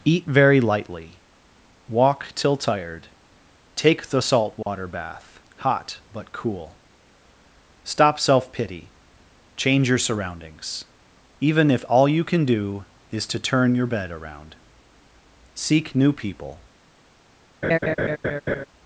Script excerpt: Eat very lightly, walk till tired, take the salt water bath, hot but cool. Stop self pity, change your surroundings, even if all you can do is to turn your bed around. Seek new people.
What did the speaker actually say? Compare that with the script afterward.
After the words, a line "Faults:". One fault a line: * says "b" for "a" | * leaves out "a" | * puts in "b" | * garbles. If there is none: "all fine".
Eat very lightly, walk till tired, take the salt water bath, hot but cool. Stop self pity, change your surroundings, even if all you can do is to turn your bed around. Seek new people.
Faults:
all fine